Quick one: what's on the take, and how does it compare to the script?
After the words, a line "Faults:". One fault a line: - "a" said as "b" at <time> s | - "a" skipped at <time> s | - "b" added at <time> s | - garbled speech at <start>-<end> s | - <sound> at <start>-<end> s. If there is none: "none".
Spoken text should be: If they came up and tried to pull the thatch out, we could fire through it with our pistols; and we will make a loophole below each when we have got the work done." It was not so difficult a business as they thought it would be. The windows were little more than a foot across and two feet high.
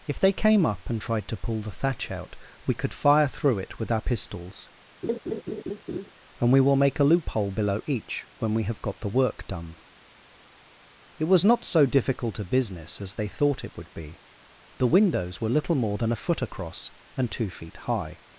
If they came up and tried to pull the thatch out, we could fire through it with our pistols; and we will make a loophole below each when we have got the work done." It was not so difficult a business as they thought it would be. The windows were little more than a foot across and two feet high.
Faults:
- laugh at 5.0-6.1 s